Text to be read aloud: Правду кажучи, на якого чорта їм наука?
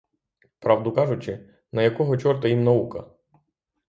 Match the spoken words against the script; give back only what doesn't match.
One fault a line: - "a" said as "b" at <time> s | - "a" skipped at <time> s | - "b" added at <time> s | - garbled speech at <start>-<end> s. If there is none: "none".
none